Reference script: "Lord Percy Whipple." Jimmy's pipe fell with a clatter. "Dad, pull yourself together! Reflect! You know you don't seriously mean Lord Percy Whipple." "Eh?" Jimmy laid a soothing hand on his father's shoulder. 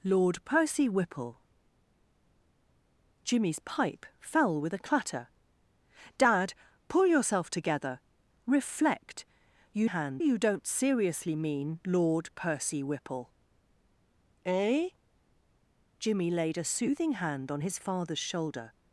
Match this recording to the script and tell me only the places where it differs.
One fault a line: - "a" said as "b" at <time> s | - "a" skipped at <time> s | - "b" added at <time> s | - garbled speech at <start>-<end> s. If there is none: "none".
- "know" said as "hand" at 9.9 s